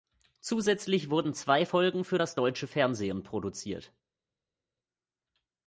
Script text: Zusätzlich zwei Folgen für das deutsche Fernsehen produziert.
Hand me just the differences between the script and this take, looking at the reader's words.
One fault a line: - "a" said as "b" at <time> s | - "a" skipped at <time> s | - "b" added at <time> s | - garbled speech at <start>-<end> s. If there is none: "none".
- "wurden" added at 1.1 s